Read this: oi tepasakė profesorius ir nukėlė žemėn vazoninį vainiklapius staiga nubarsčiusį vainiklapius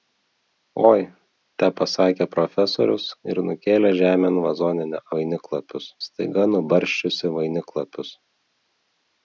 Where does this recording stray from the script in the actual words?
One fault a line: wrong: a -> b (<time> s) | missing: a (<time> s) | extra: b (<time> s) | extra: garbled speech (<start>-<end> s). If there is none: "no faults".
no faults